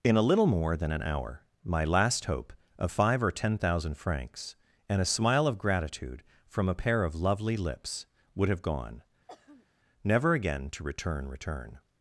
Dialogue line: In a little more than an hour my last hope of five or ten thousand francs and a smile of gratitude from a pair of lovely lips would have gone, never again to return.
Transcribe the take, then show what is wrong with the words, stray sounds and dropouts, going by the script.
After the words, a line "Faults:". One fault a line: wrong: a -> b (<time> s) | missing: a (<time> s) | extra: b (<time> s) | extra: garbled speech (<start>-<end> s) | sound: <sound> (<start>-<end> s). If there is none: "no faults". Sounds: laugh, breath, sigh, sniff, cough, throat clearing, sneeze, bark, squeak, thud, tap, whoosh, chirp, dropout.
In a little more than an hour my last hope of five or ten thousand francs and a smile of gratitude from a pair of lovely lips would have gone, never again to return return.
Faults:
sound: throat clearing (9.3-9.7 s)
extra: return (11.3 s)